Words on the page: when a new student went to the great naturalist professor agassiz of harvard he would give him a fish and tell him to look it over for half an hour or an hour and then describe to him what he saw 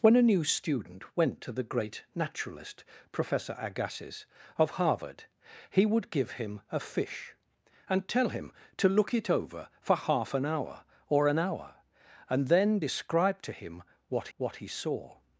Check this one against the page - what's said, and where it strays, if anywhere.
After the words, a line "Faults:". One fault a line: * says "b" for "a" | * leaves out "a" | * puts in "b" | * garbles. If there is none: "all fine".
when a new student went to the great naturalist professor agassiz of harvard he would give him a fish and tell him to look it over for half an hour or an hour and then describe to him what what he saw
Faults:
* puts in "what"